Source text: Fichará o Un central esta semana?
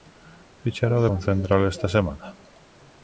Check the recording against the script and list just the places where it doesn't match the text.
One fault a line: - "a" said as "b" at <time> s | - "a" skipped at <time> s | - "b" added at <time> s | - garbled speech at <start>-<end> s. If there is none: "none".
none